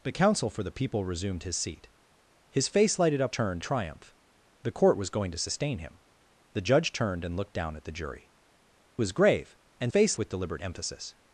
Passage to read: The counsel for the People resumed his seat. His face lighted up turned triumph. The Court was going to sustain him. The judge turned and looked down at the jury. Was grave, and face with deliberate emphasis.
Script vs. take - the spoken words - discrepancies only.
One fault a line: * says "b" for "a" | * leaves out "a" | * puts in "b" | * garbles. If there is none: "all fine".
all fine